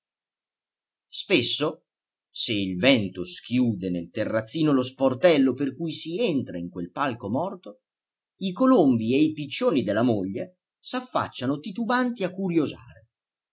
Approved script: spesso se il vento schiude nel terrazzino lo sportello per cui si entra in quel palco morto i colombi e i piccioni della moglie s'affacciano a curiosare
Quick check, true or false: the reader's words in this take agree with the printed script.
false